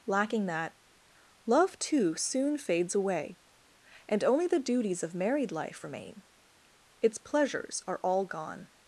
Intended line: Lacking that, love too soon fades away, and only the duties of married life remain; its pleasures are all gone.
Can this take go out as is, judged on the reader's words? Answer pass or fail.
pass